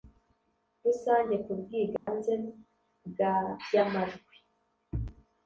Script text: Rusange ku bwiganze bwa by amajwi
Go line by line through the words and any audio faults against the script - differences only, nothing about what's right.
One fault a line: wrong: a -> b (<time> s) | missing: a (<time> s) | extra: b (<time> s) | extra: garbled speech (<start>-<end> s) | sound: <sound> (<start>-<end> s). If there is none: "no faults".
sound: dropout (2.0-2.1 s)